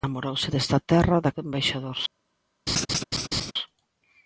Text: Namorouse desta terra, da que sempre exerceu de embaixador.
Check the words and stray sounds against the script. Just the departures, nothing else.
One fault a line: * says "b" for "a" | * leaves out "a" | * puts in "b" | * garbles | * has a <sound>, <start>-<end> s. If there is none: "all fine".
* leaves out "que sempre exerceu"
* has a laugh, 2.7-3.5 s